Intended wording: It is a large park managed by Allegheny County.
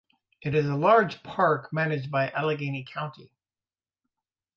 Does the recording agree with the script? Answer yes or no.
yes